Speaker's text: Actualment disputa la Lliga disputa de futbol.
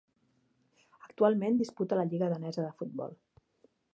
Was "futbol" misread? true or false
false